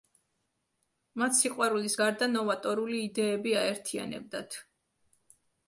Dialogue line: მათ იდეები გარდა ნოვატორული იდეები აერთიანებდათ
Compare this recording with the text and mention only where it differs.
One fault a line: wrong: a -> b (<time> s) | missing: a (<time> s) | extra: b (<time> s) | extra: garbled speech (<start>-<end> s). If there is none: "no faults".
wrong: იდეები -> სიყვარულის (1.4 s)